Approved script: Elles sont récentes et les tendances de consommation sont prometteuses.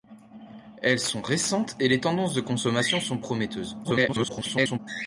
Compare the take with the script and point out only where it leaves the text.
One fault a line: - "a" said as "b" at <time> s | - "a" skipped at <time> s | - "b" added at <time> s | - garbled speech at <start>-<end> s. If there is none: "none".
- garbled speech at 3.8-4.8 s